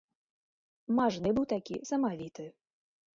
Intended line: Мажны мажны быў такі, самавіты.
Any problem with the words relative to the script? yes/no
yes